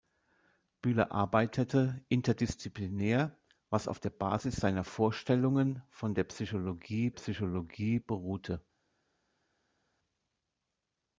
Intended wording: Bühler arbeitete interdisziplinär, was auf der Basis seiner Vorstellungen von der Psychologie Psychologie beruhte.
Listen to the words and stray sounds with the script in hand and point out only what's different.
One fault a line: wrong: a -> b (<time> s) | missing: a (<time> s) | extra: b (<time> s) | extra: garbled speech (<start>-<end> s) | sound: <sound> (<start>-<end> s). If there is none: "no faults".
no faults